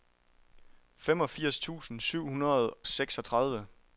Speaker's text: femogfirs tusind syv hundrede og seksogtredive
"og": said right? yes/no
no